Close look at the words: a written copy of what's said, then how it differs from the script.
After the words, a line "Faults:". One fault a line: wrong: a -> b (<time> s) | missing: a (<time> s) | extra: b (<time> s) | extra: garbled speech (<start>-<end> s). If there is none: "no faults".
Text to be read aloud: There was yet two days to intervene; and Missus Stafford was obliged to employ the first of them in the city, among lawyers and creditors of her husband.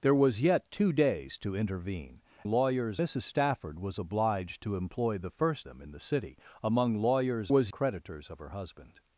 There was yet two days to intervene; lawyers Missus Stafford was obliged to employ the first them in the city, among lawyers was creditors of her husband.
Faults:
wrong: and -> lawyers (2.4 s)
missing: of (5.7 s)
wrong: and -> was (7.5 s)